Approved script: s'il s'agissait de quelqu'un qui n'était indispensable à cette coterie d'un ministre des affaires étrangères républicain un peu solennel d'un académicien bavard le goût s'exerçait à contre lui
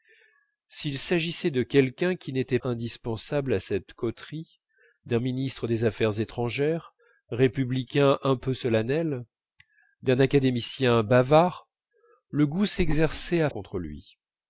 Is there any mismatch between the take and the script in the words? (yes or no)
no